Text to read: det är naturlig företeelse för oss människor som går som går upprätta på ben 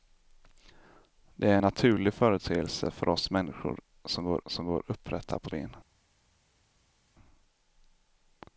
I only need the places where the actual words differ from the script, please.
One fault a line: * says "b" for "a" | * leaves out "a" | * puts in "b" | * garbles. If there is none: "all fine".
all fine